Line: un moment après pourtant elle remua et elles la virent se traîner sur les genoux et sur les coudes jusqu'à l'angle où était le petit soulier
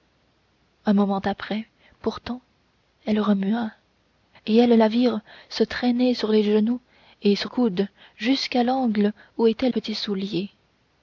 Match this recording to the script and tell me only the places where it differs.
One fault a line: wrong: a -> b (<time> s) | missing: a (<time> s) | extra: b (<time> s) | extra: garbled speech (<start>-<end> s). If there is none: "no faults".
missing: les (7.5 s)
missing: le (9.7 s)